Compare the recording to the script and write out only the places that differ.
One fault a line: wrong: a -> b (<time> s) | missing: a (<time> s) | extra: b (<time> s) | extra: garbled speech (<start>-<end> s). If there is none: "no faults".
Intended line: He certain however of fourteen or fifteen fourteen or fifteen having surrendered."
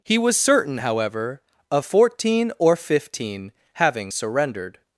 extra: was (0.2 s)
missing: fourteen or fifteen (3.5 s)